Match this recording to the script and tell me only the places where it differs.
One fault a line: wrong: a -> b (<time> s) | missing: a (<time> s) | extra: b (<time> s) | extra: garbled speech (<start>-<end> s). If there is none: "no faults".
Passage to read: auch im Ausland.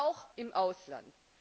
no faults